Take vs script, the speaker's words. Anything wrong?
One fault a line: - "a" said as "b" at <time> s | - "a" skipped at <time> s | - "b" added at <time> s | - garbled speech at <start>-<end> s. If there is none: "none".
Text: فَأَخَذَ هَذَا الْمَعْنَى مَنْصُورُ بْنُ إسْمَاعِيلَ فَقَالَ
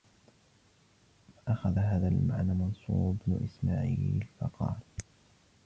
none